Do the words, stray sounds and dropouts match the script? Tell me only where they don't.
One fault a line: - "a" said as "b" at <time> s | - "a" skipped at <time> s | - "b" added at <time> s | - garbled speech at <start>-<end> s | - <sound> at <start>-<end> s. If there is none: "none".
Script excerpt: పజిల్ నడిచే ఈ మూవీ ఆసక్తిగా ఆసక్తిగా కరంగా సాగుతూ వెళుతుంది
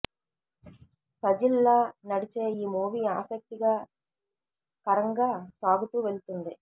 - "లా" added at 1.6 s
- "ఆసక్తిగా" skipped at 3.7 s